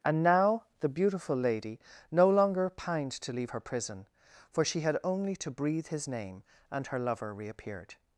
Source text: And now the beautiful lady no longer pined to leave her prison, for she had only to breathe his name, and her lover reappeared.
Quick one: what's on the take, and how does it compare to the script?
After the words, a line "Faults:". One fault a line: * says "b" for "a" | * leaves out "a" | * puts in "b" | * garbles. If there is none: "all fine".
And now the beautiful lady no longer pined to leave her prison, for she had only to breathe his name, and her lover reappeared.
Faults:
all fine